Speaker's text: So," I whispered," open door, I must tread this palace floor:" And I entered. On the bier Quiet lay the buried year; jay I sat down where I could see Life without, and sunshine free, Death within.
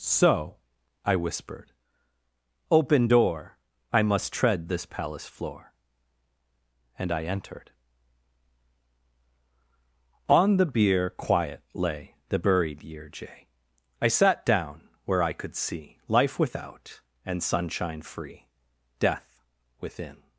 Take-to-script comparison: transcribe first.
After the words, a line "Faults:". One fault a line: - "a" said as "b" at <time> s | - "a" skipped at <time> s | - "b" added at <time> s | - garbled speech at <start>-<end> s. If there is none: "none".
So," I whispered," open door, I must tread this palace floor:" And I entered. On the bier Quiet lay the buried year; jay I sat down where I could see Life without, and sunshine free, Death within.
Faults:
none